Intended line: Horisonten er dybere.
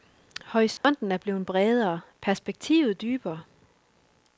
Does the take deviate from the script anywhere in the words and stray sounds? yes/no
yes